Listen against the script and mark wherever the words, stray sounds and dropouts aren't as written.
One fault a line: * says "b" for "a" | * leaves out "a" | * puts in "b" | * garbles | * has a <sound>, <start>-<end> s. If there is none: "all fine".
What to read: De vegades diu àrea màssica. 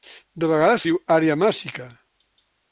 all fine